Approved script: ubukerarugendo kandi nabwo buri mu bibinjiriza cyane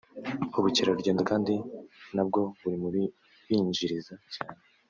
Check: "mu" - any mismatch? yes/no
no